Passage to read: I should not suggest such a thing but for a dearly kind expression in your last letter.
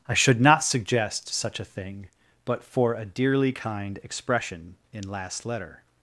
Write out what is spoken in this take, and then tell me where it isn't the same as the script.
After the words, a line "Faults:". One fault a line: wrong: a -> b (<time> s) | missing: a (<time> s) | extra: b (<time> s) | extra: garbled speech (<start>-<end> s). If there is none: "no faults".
I should not suggest such a thing but for a dearly kind expression in last letter.
Faults:
missing: your (5.1 s)